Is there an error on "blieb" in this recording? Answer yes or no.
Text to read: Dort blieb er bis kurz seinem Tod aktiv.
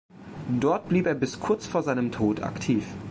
no